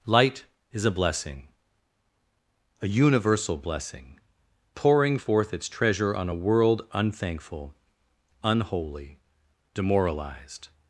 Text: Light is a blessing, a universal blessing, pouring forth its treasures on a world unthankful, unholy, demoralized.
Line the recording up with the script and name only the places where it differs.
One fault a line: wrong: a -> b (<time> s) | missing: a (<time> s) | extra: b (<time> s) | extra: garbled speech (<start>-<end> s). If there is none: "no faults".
wrong: treasures -> treasure (5.7 s)